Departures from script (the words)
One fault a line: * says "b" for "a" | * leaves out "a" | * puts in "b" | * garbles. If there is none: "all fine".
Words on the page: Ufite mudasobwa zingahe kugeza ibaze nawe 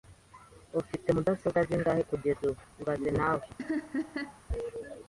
* puts in "ubu"